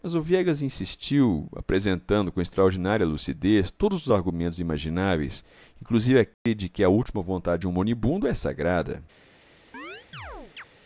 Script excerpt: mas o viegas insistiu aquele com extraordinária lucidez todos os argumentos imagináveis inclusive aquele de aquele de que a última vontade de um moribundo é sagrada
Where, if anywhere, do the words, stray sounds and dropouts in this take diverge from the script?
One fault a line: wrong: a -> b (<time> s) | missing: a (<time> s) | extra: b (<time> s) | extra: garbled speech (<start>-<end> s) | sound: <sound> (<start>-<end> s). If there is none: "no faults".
wrong: aquele -> apresentando (1.6 s)
sound: dropout (6.3-6.5 s)
missing: aquele de (6.7 s)
sound: chirp (9.7-10.6 s)